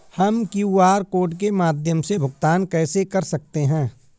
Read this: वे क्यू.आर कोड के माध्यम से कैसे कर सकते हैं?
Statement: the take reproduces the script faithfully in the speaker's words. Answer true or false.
false